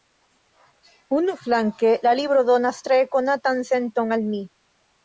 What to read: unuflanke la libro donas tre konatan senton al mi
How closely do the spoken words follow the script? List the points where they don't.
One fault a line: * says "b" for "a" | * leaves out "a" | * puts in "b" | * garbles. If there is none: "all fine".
all fine